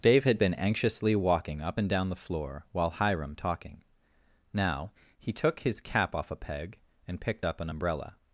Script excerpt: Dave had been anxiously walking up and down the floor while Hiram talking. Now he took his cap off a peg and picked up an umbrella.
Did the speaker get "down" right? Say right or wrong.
right